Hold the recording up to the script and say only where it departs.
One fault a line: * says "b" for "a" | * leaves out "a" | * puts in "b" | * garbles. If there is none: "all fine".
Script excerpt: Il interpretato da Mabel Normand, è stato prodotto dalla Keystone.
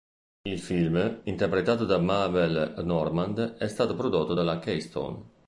* puts in "film"